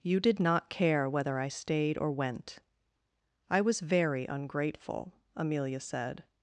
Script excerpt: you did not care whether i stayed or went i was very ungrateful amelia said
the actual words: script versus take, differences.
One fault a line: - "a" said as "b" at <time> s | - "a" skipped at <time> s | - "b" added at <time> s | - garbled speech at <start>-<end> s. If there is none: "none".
none